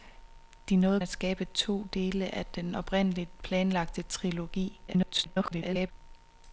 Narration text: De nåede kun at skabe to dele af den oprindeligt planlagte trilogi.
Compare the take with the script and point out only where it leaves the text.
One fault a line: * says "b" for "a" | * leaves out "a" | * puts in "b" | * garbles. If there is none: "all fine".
* leaves out "kun"
* garbles